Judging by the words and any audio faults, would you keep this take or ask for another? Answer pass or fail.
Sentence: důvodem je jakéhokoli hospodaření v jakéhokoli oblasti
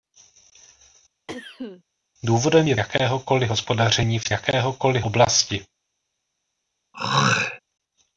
fail